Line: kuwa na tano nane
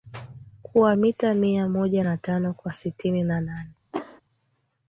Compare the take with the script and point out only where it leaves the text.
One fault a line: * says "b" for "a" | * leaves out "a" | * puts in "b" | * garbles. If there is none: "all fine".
* puts in "mita mia moja"
* puts in "kwa sitini na"